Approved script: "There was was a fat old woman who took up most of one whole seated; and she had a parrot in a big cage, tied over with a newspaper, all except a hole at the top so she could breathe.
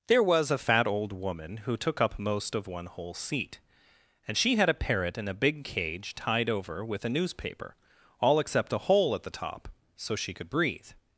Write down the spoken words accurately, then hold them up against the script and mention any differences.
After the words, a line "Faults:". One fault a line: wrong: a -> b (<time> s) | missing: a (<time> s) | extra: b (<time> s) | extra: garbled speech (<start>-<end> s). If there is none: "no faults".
"There was a fat old woman who took up most of one whole seat; and she had a parrot in a big cage, tied over with a newspaper, all except a hole at the top so she could breathe.
Faults:
missing: was (0.5 s)
wrong: seated -> seat (3.1 s)